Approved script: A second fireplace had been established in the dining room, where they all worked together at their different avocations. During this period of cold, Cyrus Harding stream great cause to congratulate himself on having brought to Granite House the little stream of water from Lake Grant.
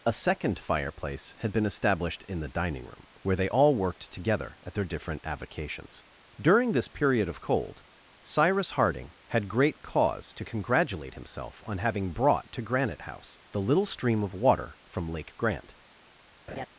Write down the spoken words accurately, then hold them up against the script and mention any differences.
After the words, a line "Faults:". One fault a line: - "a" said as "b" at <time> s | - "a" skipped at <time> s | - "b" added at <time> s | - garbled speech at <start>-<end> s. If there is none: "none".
A second fireplace had been established in the dining room, where they all worked together at their different avocations. During this period of cold, Cyrus Harding had great cause to congratulate himself on having brought to Granite House the little stream of water from Lake Grant.
Faults:
- "stream" said as "had" at 9.3 s